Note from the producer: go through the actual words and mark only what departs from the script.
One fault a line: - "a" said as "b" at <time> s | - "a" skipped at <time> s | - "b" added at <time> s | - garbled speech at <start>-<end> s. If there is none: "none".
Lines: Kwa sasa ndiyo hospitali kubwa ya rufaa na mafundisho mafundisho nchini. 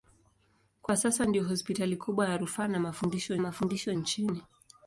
none